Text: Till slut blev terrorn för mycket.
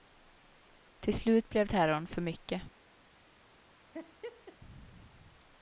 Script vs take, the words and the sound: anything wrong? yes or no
yes